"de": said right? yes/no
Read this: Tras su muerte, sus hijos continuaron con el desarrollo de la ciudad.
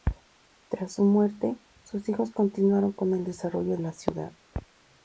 no